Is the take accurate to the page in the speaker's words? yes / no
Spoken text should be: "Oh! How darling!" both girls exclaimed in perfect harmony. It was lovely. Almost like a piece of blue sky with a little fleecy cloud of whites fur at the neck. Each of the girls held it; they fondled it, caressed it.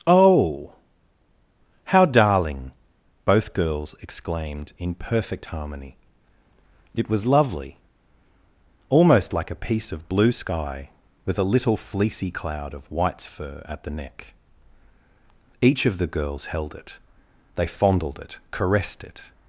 yes